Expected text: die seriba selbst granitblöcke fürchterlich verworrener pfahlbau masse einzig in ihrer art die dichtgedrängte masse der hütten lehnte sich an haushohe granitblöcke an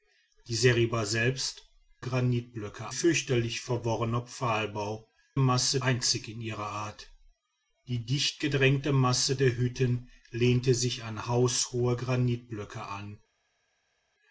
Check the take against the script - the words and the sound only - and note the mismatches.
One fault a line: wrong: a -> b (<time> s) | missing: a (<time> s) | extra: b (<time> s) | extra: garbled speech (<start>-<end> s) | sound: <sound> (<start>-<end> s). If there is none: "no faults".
no faults